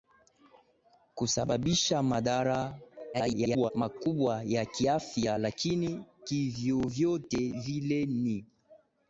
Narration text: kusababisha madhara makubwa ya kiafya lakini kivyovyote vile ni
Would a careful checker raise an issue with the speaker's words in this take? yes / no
yes